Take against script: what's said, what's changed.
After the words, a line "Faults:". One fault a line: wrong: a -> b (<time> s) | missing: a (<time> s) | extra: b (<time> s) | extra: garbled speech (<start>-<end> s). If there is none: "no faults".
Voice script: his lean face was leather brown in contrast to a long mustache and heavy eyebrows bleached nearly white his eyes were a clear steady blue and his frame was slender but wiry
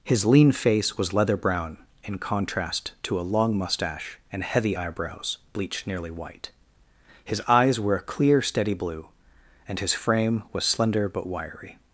his lean face was leather brown in contrast to a long mustache and heavy eyebrows bleached nearly white his eyes were a clear steady blue and his frame was slender but wiry
Faults:
no faults